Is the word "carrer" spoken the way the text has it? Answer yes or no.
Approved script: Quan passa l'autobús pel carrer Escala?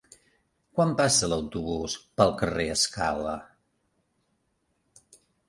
yes